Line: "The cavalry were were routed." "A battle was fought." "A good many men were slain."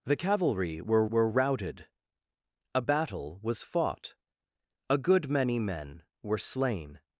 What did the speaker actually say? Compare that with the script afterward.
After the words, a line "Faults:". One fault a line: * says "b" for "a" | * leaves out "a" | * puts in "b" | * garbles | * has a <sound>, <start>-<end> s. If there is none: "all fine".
"The cavalry were were routed." "A battle was fought." "A good many men were slain."
Faults:
all fine